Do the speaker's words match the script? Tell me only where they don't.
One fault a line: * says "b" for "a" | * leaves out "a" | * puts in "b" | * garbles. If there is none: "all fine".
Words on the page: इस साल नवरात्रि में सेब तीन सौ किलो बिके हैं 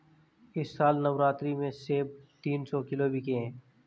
all fine